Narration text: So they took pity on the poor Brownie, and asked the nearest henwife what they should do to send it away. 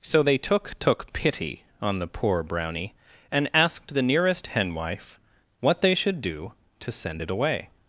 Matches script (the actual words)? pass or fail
fail